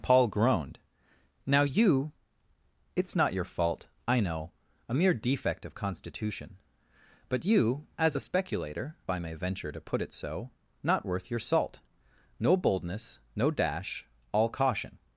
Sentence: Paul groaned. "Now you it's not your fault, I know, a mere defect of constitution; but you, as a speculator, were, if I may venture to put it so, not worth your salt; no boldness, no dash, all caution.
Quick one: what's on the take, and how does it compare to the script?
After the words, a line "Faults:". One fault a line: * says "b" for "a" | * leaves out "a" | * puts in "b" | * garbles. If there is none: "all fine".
Paul groaned. "Now you it's not your fault, I know, a mere defect of constitution; but you, as a speculator, I may venture to put it so, not worth your salt; no boldness, no dash, all caution.
Faults:
* leaves out "were if"